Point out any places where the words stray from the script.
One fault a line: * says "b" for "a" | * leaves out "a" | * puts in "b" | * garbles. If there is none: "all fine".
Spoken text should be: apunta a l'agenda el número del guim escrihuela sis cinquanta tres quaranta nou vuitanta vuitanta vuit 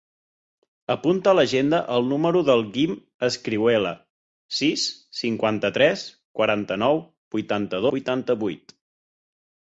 all fine